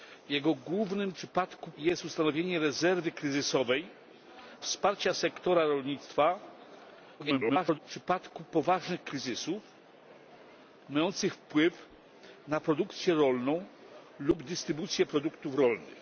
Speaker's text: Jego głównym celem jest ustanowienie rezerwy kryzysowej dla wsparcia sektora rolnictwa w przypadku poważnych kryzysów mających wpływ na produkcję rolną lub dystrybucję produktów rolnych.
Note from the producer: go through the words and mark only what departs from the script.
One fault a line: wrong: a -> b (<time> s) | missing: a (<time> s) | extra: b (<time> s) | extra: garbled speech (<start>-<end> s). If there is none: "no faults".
wrong: celem -> przypadku (1.2 s)
missing: dla (3.9 s)
extra: garbled speech (7.2-7.8 s)